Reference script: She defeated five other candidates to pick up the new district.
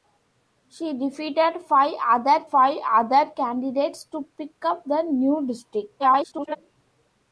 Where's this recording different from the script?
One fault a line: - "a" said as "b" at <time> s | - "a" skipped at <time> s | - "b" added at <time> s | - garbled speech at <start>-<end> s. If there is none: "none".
- "five other" added at 2.4 s
- garbled speech at 6.0-6.6 s